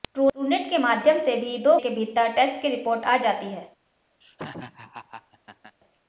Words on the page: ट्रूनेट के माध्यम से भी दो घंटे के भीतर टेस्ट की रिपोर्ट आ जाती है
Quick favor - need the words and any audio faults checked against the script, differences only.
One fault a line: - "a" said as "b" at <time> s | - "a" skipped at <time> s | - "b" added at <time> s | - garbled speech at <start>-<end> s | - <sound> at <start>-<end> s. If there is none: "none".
- "घंटे" skipped at 1.8 s
- laugh at 4.2-5.8 s